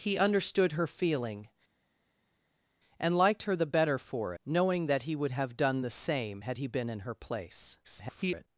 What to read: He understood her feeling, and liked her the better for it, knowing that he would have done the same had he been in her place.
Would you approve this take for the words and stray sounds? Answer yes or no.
no